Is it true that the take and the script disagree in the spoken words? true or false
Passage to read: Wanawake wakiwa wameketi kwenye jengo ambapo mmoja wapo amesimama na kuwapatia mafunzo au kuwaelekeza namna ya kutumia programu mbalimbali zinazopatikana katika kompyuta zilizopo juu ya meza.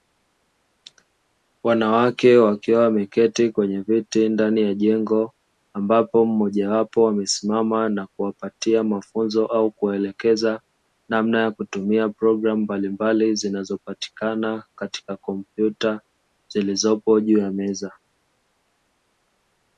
true